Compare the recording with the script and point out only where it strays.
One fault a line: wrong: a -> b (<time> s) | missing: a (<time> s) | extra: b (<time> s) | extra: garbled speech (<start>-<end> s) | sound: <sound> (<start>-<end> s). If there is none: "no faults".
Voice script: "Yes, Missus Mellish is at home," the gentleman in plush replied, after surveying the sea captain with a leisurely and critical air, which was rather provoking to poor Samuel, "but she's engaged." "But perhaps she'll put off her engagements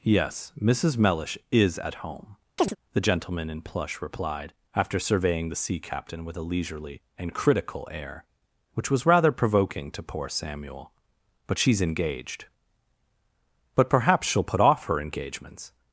sound: chirp (2.6-2.8 s)